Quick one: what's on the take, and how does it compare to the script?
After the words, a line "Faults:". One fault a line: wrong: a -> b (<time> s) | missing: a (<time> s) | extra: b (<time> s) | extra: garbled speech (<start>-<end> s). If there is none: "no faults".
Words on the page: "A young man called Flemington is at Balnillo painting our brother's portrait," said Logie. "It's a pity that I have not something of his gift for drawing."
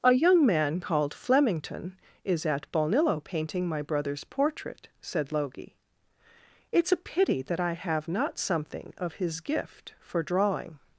"A young man called Flemington is at Balnillo painting my brother's portrait," said Logie. "It's a pity that I have not something of his gift for drawing."
Faults:
wrong: our -> my (3.7 s)